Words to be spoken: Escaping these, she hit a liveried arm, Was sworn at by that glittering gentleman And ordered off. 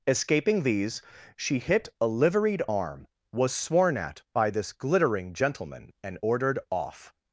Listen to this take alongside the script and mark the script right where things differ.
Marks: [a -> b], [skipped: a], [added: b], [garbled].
Escaping these, she hit a liveried arm, Was sworn at by [that -> this] glittering gentleman And ordered off.